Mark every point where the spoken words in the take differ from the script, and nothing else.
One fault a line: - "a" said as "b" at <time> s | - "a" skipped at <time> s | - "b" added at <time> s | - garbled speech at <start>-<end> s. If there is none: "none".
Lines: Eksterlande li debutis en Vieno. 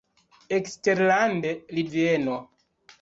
- "debutis en" skipped at 1.8 s